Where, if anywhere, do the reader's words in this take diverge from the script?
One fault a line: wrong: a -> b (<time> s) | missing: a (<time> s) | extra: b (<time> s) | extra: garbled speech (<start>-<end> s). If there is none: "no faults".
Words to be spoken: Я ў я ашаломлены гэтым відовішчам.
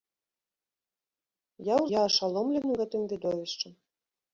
no faults